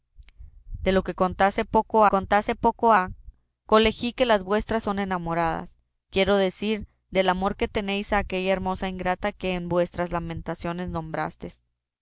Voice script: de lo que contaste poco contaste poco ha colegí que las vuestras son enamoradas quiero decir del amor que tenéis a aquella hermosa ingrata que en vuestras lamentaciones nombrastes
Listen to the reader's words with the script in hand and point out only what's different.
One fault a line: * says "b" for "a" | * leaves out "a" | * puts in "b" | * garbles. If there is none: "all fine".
all fine